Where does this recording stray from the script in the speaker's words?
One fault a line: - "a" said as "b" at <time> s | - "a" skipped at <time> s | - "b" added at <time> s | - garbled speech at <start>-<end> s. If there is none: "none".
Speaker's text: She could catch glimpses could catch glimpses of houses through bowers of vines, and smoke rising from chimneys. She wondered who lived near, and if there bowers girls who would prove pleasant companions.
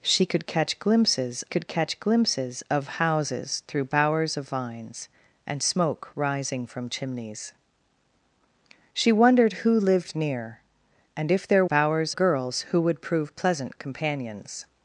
none